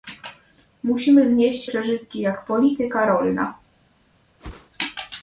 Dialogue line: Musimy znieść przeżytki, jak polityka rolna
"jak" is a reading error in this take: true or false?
false